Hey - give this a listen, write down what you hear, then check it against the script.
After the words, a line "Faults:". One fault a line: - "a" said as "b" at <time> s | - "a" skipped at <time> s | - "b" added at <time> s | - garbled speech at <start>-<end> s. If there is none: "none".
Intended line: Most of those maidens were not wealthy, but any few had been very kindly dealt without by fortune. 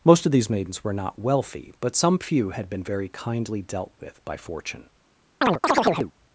Most of these maidens were not wealthy, but some few had been very kindly dealt with by fortune.
Faults:
- "those" said as "these" at 0.3 s
- "any" said as "some" at 1.9 s
- "without" said as "with" at 4.0 s